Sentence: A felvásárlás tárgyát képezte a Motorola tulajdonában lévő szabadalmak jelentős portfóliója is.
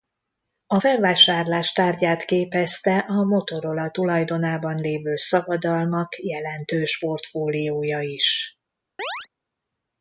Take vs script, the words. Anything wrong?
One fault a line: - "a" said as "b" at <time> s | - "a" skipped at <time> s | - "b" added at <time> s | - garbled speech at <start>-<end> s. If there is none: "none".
none